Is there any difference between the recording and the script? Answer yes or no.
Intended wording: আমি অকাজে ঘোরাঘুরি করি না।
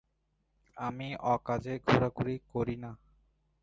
no